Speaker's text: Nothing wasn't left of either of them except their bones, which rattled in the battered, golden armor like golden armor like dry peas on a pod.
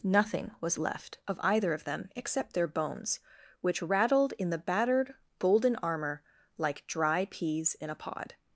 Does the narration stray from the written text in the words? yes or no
yes